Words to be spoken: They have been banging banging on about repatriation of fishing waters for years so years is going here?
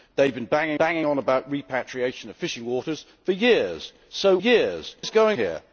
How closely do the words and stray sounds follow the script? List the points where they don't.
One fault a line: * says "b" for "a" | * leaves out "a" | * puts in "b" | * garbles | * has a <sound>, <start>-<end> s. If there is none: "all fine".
all fine